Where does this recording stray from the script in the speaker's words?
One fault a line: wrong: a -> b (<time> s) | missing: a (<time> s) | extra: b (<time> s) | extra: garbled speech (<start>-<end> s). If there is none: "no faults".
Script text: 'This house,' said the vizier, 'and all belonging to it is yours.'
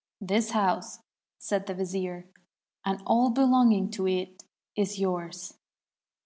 no faults